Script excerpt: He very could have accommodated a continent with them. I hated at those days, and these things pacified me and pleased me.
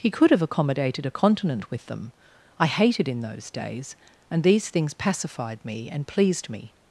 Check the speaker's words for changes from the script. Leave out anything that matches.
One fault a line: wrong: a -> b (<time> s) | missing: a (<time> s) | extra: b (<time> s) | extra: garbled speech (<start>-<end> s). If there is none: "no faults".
missing: very (0.1 s)
wrong: at -> in (3.1 s)